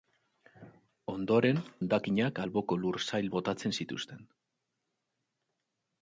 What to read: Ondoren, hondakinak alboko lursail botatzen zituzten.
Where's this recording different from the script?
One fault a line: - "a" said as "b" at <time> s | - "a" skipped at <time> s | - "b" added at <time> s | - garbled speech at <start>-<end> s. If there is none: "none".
none